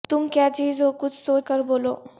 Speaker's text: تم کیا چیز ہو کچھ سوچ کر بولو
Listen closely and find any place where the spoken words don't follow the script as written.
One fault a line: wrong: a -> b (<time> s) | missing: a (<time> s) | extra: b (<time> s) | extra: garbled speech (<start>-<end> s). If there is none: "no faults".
no faults